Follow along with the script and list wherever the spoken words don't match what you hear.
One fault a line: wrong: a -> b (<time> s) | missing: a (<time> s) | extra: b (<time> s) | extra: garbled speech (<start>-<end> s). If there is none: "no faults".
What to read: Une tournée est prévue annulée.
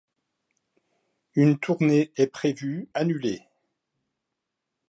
no faults